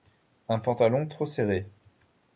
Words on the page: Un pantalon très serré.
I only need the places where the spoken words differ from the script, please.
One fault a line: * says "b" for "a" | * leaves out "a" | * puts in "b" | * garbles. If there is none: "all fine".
* says "trop" for "très"